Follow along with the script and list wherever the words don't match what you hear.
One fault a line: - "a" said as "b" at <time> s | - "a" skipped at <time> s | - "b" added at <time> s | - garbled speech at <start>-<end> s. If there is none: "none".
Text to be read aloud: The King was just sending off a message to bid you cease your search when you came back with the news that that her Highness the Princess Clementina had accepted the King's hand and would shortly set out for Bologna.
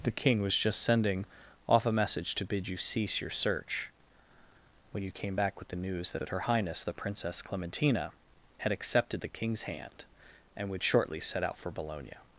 none